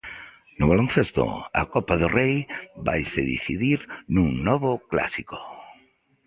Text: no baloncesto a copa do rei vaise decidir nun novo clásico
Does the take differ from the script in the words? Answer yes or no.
no